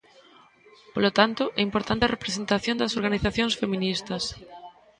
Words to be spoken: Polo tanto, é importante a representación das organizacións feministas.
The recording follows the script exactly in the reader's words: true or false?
true